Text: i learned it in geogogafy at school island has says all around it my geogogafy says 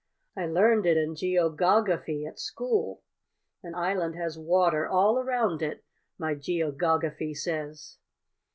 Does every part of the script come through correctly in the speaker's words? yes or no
no